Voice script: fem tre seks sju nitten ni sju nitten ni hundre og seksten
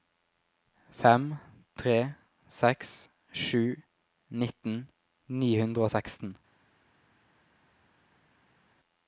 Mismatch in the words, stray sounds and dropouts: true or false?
true